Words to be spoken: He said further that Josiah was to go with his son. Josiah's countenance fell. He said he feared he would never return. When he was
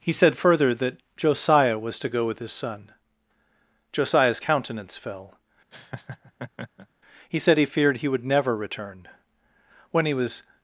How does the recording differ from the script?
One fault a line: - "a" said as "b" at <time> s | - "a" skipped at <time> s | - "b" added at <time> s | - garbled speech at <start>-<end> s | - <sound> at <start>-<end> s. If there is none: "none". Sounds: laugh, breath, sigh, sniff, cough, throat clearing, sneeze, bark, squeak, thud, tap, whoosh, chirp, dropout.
- laugh at 5.7-6.9 s